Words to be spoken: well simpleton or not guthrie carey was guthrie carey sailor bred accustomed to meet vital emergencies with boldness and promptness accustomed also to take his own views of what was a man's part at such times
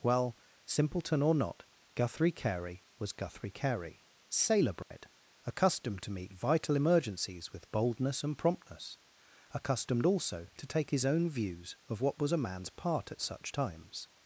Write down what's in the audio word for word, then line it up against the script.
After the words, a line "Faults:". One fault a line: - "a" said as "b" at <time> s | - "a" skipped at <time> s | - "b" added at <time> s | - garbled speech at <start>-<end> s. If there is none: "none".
well simpleton or not guthrie carey was guthrie carey sailor bred accustomed to meet vital emergencies with boldness and promptness accustomed also to take his own views of what was a man's part at such times
Faults:
none